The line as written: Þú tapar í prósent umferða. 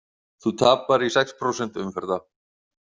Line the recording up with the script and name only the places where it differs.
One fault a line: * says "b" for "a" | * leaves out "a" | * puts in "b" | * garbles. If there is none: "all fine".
* puts in "sex"